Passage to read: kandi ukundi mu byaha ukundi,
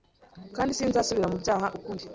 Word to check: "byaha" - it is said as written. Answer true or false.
true